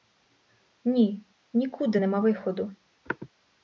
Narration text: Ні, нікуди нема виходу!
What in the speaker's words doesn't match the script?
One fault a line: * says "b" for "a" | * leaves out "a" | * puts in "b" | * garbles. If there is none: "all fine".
all fine